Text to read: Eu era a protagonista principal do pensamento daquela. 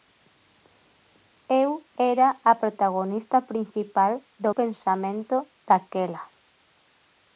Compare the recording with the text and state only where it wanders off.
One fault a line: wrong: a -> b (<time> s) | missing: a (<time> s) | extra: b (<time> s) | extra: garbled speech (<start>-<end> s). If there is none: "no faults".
no faults